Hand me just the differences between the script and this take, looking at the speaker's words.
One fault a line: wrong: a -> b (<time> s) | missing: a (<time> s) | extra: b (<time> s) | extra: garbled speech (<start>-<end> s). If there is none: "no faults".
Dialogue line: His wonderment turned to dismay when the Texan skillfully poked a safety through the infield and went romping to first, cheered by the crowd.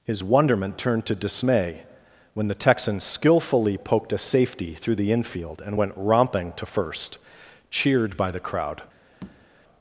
no faults